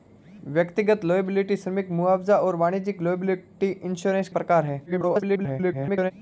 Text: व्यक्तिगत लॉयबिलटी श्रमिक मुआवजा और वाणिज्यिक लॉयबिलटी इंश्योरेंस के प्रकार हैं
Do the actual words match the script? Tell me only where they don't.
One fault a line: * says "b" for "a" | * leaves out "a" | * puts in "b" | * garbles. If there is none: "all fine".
* leaves out "के"
* garbles